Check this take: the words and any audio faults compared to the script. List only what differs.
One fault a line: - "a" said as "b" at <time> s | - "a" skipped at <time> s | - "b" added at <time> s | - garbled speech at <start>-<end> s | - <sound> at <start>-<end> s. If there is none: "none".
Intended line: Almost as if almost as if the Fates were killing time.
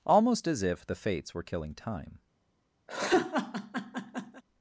- "almost as if" skipped at 0.8 s
- laugh at 2.9-4.4 s